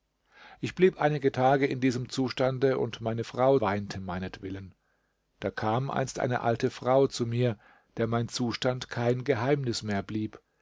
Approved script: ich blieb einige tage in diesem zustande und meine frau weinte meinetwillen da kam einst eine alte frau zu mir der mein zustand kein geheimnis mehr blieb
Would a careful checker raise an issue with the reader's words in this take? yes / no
no